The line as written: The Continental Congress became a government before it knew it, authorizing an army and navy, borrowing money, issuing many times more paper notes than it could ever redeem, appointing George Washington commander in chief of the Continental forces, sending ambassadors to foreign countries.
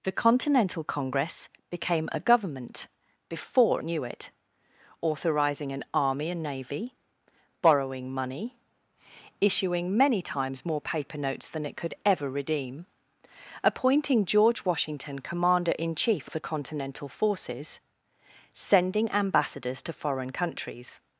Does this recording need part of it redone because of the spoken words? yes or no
yes